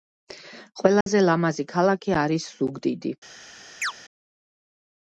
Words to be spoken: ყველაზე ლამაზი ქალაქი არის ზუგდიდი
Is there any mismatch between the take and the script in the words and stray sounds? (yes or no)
yes